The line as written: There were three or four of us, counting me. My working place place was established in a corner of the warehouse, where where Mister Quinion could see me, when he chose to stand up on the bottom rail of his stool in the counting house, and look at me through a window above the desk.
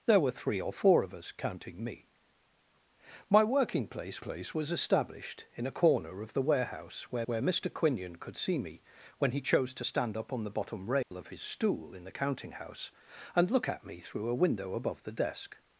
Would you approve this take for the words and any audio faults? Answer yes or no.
no